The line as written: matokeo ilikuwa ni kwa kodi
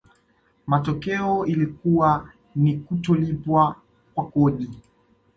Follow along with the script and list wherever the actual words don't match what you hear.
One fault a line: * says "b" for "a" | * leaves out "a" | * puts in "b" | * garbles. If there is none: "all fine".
* puts in "kutolipwa"